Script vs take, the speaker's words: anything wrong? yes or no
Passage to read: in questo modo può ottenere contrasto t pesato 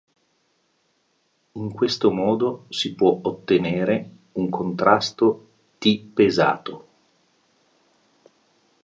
yes